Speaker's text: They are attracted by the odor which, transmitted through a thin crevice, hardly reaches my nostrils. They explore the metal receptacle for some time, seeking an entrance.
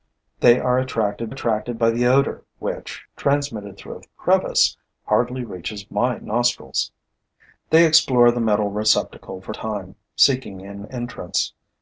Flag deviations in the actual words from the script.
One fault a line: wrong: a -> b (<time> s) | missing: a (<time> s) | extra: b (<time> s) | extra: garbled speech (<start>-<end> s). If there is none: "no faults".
extra: attracted (1.3 s)
missing: thin (4.0 s)
missing: some (9.5 s)